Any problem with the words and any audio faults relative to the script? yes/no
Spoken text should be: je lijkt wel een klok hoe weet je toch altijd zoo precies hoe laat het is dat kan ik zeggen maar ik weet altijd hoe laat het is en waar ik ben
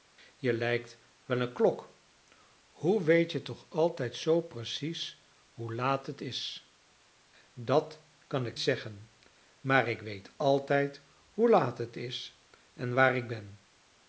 no